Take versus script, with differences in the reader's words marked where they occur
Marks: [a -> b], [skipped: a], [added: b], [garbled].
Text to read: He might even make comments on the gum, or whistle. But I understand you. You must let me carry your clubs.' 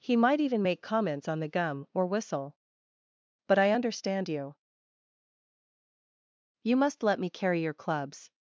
He might even make comments on the gum, or whistle. But I understand you. You must let me carry your clubs.'